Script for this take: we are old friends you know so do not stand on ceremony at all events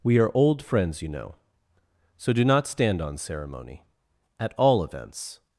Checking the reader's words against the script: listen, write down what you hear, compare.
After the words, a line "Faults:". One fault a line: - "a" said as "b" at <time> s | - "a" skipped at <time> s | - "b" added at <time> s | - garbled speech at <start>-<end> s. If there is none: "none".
we are old friends you know so do not stand on ceremony at all events
Faults:
none